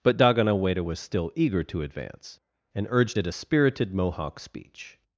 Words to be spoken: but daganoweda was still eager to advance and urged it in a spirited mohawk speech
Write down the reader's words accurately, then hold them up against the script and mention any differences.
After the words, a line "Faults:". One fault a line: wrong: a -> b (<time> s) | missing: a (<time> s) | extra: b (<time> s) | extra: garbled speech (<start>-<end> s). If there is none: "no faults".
but daganoweda was still eager to advance and urged it a spirited mohawk speech
Faults:
missing: in (3.3 s)